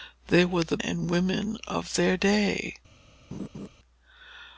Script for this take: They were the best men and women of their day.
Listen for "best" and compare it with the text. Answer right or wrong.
wrong